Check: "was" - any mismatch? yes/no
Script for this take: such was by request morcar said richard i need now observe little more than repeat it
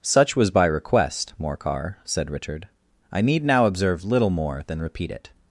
no